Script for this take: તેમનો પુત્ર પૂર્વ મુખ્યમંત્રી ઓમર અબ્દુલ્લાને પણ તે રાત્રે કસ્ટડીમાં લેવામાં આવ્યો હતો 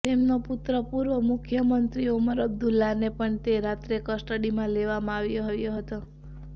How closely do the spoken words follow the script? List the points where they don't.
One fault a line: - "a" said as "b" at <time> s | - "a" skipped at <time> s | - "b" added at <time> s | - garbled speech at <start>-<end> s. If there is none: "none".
- "આવ્યો" added at 5.5 s